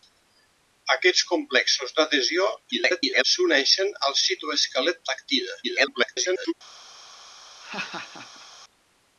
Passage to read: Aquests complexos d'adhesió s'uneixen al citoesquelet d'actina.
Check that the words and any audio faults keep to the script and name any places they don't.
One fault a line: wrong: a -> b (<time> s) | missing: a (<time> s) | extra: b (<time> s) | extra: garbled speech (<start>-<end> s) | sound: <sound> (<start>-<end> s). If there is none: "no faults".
extra: garbled speech (2.7-3.2 s)
extra: garbled speech (5.6-6.5 s)
sound: laugh (7.6-8.5 s)